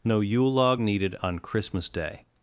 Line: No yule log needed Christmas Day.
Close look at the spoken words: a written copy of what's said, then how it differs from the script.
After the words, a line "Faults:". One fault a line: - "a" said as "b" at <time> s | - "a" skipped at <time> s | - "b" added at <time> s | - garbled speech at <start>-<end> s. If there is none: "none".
No yule log needed on Christmas Day.
Faults:
- "on" added at 1.2 s